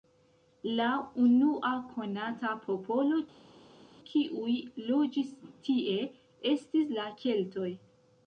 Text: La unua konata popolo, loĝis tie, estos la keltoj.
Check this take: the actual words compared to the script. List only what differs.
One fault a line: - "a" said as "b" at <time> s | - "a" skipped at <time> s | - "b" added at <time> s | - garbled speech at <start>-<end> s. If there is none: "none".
- "kiuj" added at 4.1 s
- "estos" said as "estis" at 6.5 s